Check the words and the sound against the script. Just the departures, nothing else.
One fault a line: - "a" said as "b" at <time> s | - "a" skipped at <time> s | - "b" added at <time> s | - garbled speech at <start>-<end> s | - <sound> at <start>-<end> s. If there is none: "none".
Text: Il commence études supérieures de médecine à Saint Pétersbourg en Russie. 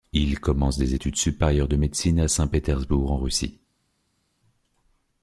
- "des" added at 0.8 s